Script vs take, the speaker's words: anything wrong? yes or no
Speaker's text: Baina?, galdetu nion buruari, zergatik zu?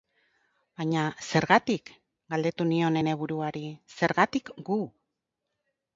yes